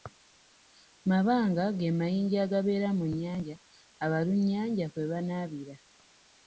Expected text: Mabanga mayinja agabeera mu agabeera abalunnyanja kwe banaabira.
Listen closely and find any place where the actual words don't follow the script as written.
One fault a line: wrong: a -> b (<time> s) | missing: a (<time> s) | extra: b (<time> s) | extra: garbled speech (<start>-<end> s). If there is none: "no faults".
extra: ge (1.8 s)
wrong: agabeera -> nnyanja (3.1 s)